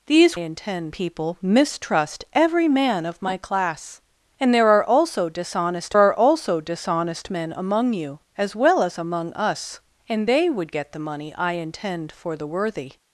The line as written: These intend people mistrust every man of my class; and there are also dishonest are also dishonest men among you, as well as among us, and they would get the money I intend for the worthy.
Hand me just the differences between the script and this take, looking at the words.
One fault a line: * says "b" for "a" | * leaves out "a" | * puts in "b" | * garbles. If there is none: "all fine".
all fine